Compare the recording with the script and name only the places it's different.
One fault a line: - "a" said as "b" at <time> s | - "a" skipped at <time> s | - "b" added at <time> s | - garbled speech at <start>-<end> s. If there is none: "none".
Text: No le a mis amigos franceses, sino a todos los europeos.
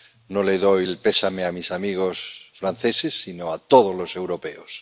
- "doy el pésame" added at 0.6 s